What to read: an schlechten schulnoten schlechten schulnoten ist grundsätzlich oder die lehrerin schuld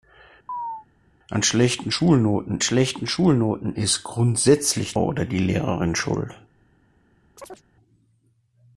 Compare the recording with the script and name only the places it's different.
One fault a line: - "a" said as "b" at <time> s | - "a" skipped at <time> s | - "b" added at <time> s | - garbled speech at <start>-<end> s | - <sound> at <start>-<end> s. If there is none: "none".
- chirp at 0.5-0.9 s
- chirp at 7.4-7.6 s